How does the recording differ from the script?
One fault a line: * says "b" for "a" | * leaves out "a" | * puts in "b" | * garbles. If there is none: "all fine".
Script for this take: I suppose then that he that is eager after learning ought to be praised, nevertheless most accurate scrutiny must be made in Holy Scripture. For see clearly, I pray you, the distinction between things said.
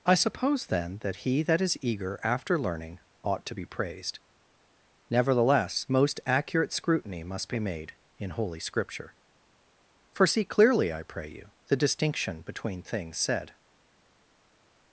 all fine